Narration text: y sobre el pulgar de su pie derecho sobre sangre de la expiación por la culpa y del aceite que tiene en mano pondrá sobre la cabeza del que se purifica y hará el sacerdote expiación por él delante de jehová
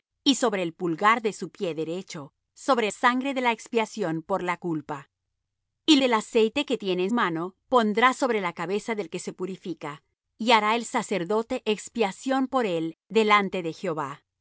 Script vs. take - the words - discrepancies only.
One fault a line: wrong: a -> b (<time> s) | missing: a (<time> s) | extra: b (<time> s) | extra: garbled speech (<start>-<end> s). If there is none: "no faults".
no faults